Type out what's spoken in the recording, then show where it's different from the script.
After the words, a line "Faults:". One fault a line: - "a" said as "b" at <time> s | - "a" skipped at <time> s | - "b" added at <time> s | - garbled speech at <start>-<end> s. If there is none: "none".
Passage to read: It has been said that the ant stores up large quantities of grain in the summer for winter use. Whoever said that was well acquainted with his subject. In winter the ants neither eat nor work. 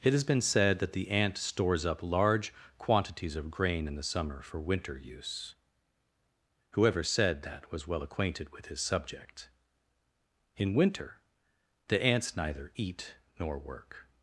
It has been said that the ant stores up large quantities of grain in the summer for winter use. Whoever said that was well acquainted with his subject. In winter the ants neither eat nor work.
Faults:
none